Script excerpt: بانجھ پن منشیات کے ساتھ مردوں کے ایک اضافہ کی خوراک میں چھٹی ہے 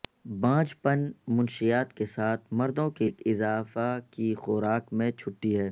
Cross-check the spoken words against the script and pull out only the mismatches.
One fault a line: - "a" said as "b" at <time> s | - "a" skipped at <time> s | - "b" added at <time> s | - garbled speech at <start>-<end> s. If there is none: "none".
none